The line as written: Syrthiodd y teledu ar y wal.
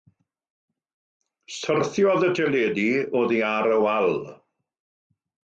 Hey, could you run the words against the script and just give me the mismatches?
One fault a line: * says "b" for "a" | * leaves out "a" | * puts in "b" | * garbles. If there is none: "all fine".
* puts in "oddi"